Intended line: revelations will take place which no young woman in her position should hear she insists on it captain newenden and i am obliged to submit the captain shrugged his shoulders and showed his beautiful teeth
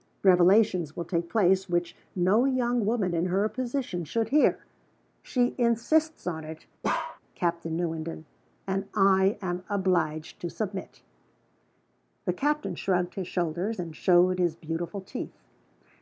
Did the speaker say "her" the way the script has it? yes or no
yes